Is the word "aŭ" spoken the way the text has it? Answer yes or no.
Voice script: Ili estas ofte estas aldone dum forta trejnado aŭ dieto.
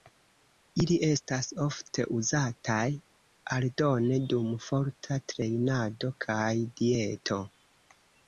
no